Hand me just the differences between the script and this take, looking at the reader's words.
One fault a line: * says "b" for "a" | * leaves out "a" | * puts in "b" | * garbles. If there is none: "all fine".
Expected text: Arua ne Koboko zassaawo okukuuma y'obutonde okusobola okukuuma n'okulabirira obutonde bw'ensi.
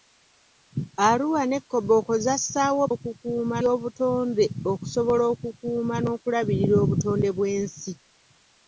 all fine